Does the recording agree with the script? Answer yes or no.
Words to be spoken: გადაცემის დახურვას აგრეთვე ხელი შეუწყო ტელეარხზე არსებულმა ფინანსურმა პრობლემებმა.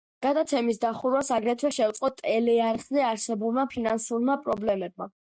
no